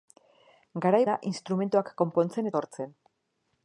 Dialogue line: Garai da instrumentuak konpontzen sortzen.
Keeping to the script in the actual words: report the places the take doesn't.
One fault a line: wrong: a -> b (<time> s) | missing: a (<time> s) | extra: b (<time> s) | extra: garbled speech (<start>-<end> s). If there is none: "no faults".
no faults